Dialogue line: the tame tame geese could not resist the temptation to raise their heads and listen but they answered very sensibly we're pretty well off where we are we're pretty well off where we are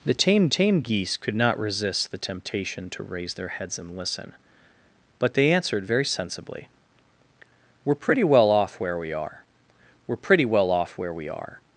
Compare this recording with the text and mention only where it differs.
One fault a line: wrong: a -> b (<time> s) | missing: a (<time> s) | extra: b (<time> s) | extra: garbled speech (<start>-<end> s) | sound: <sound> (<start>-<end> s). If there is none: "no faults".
no faults